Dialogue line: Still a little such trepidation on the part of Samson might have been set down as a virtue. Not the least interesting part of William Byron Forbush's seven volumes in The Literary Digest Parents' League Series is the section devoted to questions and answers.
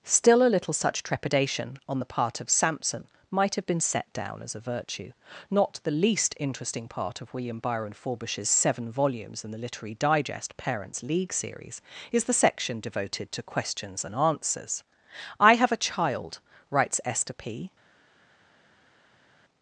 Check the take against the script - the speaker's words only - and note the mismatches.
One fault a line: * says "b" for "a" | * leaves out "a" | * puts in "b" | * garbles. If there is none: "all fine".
* puts in "I have a child writes Esther P"